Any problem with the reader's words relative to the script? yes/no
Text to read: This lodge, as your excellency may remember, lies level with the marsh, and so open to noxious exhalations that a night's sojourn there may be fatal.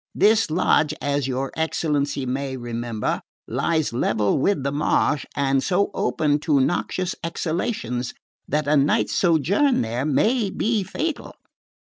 no